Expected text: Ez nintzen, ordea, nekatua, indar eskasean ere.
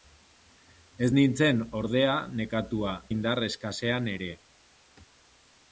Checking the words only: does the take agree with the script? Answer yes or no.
yes